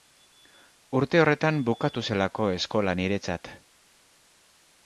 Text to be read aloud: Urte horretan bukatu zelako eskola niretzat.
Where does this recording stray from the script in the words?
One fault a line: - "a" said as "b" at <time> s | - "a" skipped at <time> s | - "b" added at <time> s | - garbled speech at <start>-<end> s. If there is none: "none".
none